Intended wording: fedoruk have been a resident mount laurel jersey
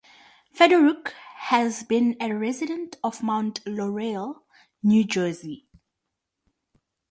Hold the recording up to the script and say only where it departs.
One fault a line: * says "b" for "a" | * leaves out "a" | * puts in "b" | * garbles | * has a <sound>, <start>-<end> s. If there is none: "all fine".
* says "has" for "have"
* puts in "of"
* puts in "new"